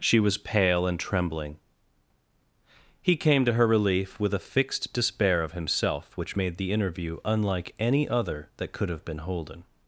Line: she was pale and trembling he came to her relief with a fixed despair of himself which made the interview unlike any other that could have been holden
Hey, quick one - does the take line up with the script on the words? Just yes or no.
yes